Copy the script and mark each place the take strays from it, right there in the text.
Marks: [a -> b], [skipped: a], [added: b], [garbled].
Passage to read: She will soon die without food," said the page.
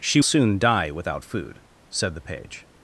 She [skipped: will] soon die without food," said the page.